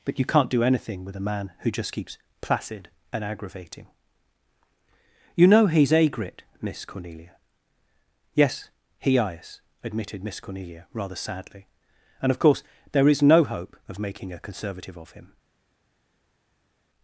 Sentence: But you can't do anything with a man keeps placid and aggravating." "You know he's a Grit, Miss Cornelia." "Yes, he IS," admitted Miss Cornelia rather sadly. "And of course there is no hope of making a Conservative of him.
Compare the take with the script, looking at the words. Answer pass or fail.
fail